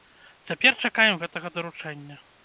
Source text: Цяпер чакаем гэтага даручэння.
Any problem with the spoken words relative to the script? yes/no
no